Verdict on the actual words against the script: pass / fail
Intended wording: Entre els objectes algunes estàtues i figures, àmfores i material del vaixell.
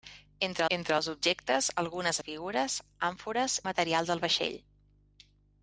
fail